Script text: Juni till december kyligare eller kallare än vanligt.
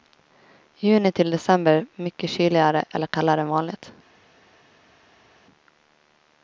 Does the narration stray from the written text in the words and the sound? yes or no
yes